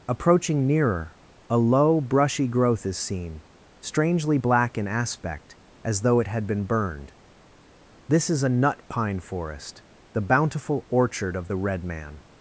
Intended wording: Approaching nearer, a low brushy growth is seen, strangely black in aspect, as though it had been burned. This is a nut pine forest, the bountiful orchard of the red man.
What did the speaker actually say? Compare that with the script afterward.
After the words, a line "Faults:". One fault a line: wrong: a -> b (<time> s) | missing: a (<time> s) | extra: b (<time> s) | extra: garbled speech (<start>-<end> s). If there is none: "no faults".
Approaching nearer, a low brushy growth is seen, strangely black in aspect, as though it had been burned. This is a nut pine forest, the bountiful orchard of the red man.
Faults:
no faults